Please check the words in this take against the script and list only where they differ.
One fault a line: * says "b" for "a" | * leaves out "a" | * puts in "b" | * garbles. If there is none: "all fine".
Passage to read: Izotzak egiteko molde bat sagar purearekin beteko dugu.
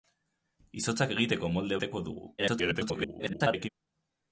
* leaves out "bat sagar purearekin"
* garbles